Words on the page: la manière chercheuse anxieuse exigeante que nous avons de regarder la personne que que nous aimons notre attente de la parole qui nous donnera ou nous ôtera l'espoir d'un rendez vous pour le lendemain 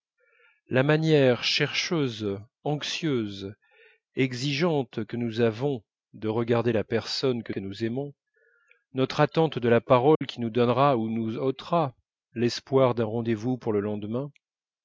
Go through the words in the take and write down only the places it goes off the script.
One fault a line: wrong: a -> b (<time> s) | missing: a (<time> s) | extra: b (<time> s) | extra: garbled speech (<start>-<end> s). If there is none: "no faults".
no faults